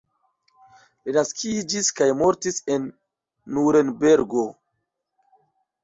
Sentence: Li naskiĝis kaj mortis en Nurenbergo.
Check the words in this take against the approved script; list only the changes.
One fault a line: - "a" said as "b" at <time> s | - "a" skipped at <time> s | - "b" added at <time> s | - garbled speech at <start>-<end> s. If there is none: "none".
none